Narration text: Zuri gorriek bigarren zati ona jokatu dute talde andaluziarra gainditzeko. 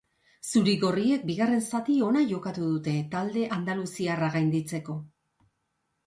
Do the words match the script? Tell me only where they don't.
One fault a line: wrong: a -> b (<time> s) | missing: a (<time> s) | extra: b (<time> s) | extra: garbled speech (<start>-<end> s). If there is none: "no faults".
no faults